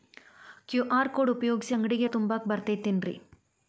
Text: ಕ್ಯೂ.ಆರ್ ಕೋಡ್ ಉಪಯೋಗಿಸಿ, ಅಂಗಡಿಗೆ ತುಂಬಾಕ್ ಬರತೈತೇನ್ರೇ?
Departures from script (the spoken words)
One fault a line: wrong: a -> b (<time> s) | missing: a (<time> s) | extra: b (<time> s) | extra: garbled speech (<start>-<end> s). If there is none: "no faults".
no faults